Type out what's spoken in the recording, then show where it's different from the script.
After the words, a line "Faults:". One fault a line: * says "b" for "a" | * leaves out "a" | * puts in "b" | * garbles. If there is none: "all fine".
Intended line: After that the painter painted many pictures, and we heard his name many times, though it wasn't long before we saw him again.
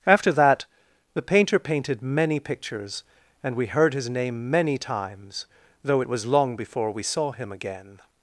After that the painter painted many pictures, and we heard his name many times, though it was long before we saw him again.
Faults:
* says "was" for "wasn't"